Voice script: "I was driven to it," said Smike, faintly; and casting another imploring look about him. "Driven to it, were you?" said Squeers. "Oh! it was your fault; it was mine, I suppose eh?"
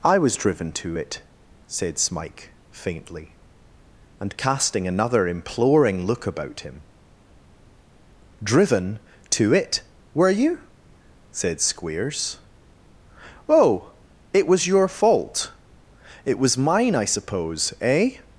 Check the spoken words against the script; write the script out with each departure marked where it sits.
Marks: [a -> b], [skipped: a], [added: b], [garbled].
"I was driven to it," said Smike, faintly; and casting another imploring look about him. "Driven to it, were you?" said Squeers. "Oh! it was your fault; it was mine, I suppose eh?"